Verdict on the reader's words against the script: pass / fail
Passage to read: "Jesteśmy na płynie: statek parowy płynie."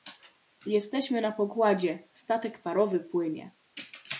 fail